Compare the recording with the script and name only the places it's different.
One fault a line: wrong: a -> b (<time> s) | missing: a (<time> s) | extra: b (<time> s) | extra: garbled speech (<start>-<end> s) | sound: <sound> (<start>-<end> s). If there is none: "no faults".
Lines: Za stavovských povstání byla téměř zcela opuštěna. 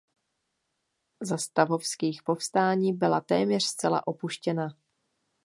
no faults